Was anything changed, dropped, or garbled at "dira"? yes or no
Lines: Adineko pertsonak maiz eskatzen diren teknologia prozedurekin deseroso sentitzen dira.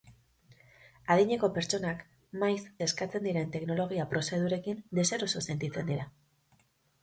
no